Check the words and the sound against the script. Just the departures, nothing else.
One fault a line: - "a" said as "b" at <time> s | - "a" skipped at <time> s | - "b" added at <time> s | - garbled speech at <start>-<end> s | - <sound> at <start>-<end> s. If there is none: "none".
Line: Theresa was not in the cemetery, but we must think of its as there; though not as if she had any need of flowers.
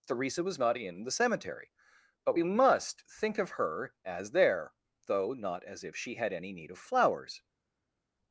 - "its" said as "her" at 3.5 s